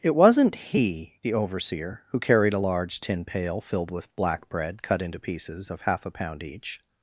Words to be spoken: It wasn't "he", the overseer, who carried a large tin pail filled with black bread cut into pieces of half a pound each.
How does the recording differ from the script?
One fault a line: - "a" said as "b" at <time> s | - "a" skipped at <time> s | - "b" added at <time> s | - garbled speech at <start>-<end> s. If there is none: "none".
none